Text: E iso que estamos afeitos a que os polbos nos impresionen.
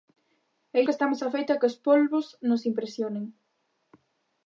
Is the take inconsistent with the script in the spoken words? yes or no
yes